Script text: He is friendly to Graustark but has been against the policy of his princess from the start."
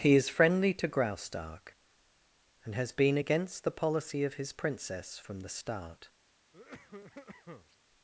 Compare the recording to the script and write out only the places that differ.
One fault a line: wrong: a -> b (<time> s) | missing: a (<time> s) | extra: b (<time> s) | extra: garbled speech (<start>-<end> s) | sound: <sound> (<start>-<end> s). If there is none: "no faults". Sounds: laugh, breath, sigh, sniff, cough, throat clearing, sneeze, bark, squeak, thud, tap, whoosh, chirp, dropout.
wrong: but -> and (2.6 s)
sound: cough (6.5-7.8 s)